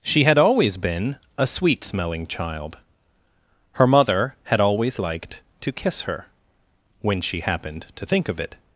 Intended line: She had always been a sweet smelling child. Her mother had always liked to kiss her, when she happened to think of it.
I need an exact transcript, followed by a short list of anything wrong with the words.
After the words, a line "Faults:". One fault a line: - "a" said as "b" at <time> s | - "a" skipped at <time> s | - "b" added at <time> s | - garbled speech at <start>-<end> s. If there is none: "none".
She had always been a sweet smelling child. Her mother had always liked to kiss her, when she happened to think of it.
Faults:
none